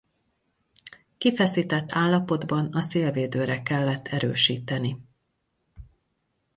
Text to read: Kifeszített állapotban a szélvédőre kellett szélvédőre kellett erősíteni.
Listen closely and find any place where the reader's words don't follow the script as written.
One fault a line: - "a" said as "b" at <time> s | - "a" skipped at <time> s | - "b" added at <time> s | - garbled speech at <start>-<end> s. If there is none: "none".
- "szélvédőre kellett" skipped at 4.1 s